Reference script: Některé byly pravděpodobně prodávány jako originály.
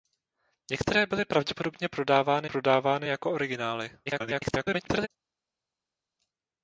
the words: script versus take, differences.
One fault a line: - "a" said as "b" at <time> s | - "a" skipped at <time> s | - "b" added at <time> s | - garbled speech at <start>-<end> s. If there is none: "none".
- "prodávány" added at 2.5 s
- garbled speech at 4.1-5.1 s